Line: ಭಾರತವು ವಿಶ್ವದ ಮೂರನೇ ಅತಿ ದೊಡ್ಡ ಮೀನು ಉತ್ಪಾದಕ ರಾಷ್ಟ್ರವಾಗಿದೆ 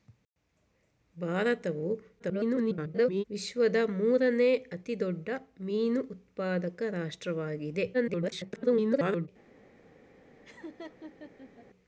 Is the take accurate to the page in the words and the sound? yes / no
no